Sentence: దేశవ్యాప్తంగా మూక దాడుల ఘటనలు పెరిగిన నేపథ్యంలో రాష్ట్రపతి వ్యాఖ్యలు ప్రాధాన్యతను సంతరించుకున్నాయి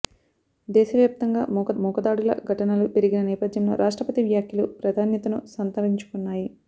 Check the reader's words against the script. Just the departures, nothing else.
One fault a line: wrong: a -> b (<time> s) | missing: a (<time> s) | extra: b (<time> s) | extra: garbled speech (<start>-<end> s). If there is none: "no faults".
extra: మూక (1.8 s)